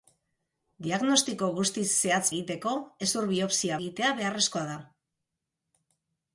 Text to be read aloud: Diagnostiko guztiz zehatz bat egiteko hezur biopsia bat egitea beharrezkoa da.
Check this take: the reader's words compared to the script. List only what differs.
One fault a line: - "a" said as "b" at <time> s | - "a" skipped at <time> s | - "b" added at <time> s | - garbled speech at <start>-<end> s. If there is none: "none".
- "bat" skipped at 2.3 s
- "bat" skipped at 3.8 s